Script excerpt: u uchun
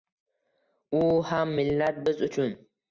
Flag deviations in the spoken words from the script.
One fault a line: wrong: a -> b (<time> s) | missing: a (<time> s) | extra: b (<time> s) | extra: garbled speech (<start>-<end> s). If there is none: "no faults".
extra: ham millat biz (1.3 s)